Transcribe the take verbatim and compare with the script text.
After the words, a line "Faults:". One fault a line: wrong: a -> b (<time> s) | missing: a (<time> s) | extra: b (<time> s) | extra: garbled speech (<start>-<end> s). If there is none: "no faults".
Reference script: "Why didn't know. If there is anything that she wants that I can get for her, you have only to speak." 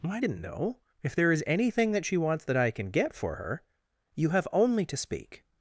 "Why didn't know. If there is anything that she wants that I can get for her, you have only to speak."
Faults:
no faults